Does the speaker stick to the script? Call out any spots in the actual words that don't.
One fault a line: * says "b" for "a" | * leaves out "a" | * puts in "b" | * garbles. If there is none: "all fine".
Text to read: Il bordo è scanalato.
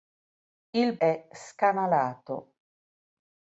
* leaves out "bordo"